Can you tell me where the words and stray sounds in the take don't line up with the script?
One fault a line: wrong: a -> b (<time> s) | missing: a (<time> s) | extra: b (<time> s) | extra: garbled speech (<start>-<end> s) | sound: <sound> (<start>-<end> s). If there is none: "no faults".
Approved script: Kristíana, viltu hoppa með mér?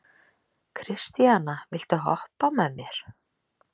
no faults